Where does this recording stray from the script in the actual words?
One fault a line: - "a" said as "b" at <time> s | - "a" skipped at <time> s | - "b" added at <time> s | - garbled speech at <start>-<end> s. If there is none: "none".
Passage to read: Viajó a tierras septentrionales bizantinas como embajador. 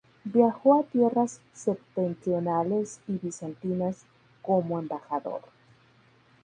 - "y" added at 3.1 s